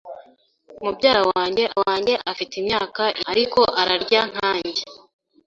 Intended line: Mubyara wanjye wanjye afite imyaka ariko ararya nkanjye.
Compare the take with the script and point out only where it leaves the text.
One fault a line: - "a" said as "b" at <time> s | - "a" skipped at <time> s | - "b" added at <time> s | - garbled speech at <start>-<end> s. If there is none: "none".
none